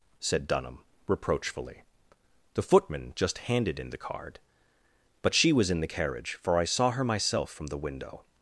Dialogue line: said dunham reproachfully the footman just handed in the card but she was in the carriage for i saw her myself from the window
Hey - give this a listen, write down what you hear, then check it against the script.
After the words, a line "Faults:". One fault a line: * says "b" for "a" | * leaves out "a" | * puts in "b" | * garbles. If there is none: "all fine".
said dunham reproachfully the footman just handed in the card but she was in the carriage for i saw her myself from the window
Faults:
all fine